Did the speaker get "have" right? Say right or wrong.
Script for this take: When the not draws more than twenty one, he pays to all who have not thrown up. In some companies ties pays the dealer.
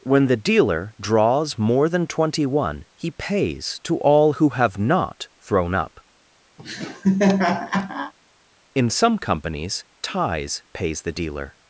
right